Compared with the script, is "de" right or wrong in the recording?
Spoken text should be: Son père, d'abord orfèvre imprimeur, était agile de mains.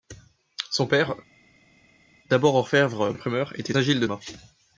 right